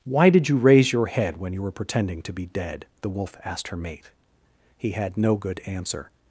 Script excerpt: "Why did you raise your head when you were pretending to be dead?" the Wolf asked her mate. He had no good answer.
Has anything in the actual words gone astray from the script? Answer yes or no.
no